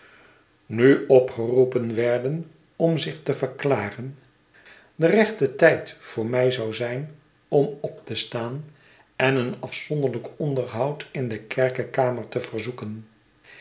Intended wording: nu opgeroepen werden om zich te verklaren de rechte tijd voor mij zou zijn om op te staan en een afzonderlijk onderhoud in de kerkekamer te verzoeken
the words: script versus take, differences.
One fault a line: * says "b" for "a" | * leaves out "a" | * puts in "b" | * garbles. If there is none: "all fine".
all fine